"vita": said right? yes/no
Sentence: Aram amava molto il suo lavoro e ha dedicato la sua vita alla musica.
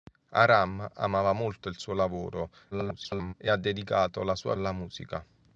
no